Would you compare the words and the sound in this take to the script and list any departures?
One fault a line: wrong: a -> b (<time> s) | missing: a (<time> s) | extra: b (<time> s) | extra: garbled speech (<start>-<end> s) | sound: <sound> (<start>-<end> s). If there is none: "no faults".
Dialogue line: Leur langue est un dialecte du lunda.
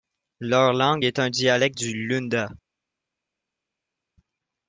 no faults